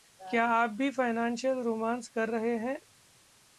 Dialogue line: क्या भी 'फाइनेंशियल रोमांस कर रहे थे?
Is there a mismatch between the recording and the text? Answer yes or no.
yes